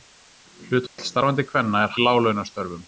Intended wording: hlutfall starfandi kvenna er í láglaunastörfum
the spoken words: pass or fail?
pass